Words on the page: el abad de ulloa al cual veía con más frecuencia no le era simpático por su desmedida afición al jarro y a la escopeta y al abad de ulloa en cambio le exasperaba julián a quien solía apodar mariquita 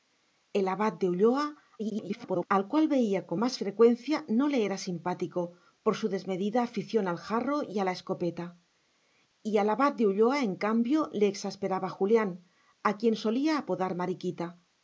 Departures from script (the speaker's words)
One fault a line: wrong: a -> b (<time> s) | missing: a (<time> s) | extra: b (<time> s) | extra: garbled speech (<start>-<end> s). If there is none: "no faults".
extra: garbled speech (1.8-2.5 s)